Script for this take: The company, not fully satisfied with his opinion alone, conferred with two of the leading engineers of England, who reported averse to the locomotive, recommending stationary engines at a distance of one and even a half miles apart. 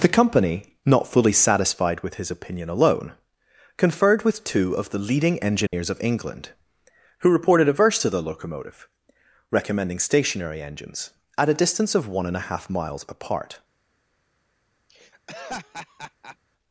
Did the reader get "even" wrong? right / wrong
wrong